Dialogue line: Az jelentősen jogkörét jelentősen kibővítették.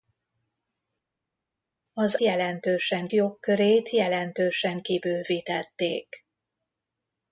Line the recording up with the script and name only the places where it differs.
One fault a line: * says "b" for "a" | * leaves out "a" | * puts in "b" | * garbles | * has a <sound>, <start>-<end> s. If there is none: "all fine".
all fine